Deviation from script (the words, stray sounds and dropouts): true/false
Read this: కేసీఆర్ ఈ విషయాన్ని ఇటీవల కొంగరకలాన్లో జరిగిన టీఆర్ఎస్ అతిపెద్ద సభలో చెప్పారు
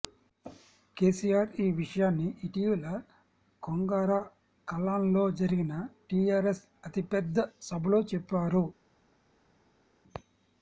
false